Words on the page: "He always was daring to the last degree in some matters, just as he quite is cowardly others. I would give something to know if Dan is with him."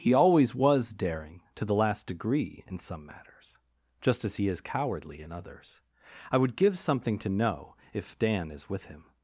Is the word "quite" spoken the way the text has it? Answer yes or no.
no